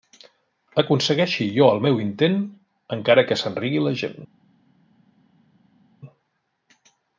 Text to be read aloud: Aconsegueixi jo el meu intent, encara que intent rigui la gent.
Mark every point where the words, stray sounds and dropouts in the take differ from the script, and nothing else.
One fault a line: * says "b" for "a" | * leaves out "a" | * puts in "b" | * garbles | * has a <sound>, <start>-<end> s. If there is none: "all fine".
* says "se'n" for "intent"